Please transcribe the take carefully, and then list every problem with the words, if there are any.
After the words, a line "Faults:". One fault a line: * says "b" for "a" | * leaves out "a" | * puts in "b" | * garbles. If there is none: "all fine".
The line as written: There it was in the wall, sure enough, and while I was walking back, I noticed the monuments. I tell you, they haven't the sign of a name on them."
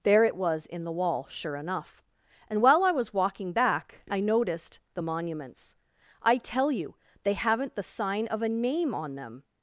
There it was in the wall, sure enough, and while I was walking back, I noticed the monuments. I tell you, they haven't the sign of a name on them."
Faults:
all fine